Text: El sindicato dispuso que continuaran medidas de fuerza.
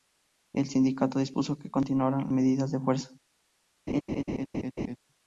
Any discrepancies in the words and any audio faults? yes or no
yes